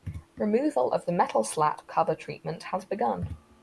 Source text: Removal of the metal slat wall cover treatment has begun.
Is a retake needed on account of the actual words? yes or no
yes